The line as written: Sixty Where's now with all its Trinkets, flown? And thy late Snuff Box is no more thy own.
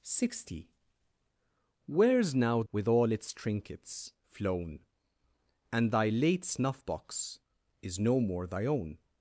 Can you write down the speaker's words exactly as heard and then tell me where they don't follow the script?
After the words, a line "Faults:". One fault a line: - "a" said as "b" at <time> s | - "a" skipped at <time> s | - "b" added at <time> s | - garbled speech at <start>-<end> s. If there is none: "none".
Sixty Where's now with all its Trinkets, flown? And thy late Snuff Box is no more thy own.
Faults:
none